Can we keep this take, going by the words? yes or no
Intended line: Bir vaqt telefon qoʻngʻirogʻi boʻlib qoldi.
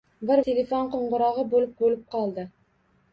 no